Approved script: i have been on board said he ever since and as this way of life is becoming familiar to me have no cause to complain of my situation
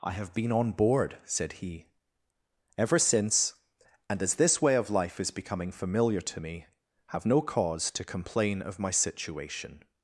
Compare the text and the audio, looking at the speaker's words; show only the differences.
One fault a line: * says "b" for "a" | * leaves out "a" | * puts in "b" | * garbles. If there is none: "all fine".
all fine